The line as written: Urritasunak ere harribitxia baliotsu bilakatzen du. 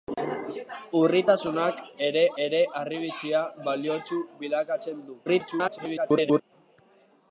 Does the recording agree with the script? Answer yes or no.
no